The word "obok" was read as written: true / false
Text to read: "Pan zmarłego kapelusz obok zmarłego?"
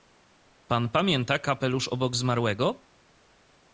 true